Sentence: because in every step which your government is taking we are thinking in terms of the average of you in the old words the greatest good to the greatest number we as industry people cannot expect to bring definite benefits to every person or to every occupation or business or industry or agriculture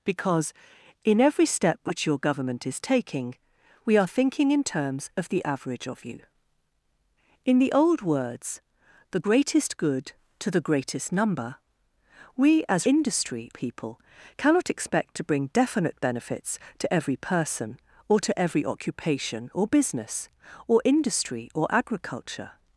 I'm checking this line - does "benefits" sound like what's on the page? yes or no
yes